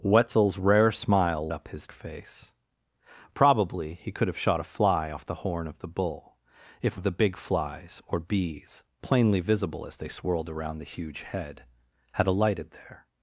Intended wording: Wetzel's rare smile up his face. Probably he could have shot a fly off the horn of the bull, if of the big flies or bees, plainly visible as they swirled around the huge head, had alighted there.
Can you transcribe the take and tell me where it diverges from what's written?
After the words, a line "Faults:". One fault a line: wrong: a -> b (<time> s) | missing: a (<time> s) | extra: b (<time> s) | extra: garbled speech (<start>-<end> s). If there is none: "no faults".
Wetzel's rare smile up his face. Probably he could have shot a fly off the horn of the bull, if of the big flies or bees, plainly visible as they swirled around the huge head, had alighted there.
Faults:
no faults